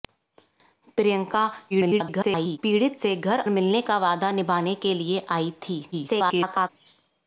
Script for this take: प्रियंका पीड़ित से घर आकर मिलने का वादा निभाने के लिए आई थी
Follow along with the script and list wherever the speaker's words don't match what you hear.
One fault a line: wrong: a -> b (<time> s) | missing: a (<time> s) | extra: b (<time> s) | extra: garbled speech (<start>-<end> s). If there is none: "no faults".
extra: garbled speech (1.7-2.6 s)
missing: आकर (3.4 s)
extra: garbled speech (5.9-6.7 s)